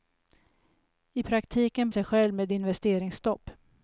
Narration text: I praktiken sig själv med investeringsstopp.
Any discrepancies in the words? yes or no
no